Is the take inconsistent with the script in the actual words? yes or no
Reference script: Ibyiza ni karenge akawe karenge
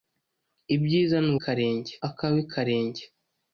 no